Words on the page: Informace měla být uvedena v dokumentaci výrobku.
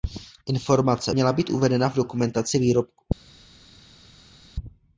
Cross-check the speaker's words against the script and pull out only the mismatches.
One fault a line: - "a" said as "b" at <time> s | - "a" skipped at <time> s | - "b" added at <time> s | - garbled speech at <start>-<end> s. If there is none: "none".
none